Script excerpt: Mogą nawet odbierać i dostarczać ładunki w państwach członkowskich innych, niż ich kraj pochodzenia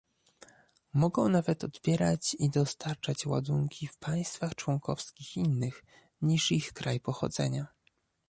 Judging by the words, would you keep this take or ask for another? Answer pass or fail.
pass